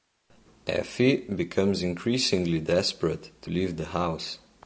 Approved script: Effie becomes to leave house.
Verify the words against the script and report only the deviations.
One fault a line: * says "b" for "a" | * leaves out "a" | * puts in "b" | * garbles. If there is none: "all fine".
* puts in "increasingly desperate"
* puts in "the"